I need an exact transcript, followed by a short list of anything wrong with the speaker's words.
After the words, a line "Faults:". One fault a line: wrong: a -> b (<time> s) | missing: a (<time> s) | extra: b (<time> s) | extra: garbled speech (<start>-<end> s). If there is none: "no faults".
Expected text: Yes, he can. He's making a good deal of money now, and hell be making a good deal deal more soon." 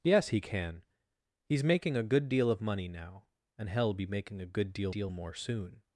Yes, he can. He's making a good deal of money now, and hell be making a good deal deal more soon."
Faults:
no faults